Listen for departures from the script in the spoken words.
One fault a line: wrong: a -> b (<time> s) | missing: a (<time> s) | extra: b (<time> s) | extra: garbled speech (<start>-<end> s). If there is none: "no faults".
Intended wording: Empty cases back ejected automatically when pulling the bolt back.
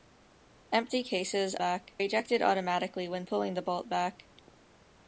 no faults